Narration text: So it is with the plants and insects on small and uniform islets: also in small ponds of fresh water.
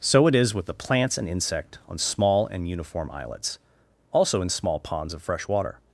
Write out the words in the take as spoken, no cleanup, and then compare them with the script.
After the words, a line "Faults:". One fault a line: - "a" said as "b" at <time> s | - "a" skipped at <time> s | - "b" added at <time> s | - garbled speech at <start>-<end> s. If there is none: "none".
So it is with the plants and insect on small and uniform islets: also in small ponds of fresh water.
Faults:
- "insects" said as "insect" at 1.3 s